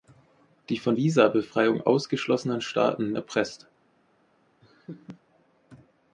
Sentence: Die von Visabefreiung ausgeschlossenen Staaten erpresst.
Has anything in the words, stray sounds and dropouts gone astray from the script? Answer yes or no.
yes